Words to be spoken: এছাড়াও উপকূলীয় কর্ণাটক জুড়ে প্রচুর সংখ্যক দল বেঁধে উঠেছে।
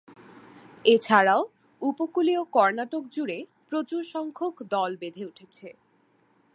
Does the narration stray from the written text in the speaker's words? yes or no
no